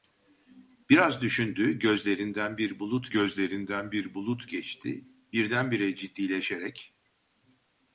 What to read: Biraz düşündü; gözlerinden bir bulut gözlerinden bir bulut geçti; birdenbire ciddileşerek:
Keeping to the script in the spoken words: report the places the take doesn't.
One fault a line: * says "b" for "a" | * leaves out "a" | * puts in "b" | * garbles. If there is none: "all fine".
all fine